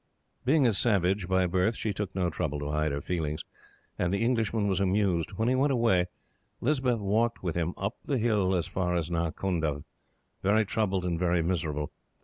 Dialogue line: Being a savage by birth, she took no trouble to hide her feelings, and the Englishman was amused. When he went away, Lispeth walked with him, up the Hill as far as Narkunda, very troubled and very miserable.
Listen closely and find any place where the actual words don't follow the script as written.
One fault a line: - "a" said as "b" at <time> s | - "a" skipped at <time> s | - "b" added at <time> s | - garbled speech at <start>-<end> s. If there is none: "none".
none